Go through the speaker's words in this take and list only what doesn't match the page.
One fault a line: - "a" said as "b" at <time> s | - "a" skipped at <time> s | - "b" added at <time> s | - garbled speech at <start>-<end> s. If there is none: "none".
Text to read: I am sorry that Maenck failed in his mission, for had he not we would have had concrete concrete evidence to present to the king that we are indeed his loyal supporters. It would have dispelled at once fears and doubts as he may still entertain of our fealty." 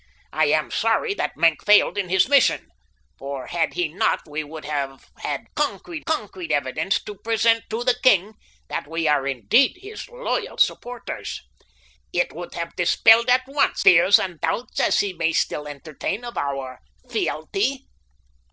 none